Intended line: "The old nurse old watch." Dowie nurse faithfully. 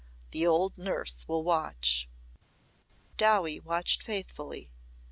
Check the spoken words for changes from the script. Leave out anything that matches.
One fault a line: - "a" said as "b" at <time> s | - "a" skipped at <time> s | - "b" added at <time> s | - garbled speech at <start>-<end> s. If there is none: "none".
- "old" said as "will" at 1.3 s
- "nurse" said as "watched" at 3.6 s